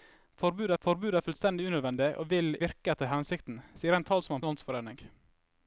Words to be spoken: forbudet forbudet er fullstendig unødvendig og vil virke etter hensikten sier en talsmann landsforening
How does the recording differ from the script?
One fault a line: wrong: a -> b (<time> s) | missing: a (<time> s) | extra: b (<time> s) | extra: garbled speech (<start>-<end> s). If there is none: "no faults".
no faults